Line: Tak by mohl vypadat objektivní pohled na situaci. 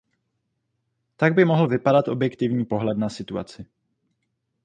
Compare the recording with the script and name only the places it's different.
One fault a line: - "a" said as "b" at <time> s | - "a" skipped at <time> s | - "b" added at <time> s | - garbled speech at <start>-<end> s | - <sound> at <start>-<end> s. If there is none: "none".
none